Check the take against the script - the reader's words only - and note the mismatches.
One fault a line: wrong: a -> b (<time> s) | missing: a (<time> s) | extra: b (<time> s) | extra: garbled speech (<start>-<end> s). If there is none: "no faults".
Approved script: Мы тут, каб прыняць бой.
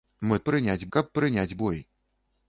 wrong: тут -> прыняць (0.5 s)